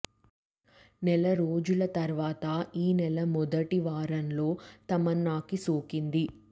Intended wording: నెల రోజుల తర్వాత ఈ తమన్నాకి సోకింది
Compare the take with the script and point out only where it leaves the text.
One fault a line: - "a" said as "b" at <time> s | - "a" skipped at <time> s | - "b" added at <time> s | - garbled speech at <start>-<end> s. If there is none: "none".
- "నెల మొదటి వారంలో" added at 2.9 s